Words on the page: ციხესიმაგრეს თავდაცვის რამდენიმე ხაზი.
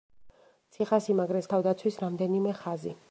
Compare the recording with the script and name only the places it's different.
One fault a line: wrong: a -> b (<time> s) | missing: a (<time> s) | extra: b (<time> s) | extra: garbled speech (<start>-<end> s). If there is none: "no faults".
no faults